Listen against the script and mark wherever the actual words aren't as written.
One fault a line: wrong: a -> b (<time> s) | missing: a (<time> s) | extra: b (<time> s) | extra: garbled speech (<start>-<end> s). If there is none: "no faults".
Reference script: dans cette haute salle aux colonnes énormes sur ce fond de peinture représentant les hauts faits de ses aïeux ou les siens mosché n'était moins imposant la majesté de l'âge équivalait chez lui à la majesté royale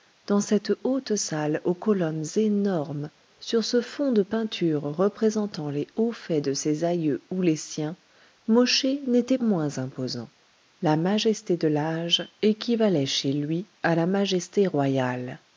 no faults